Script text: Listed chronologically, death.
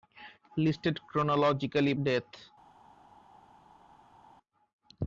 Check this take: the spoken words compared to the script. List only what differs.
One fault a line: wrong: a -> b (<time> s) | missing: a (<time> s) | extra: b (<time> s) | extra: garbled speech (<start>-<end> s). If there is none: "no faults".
no faults